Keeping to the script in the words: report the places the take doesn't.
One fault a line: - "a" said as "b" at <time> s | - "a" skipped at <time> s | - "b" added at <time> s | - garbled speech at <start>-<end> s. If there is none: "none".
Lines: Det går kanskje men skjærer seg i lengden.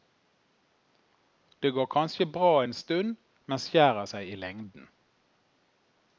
- "bra en stund" added at 2.2 s